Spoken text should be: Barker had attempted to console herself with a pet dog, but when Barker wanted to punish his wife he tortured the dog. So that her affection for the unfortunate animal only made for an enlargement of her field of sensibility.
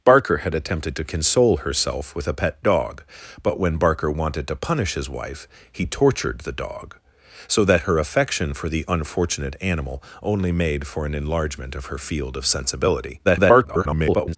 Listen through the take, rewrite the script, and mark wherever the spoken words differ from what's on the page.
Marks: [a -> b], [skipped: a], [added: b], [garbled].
Barker had attempted to console herself with a pet dog, but when Barker wanted to punish his wife he tortured the dog. So that her affection for the unfortunate animal only made for an enlargement of her field of sensibility. [garbled]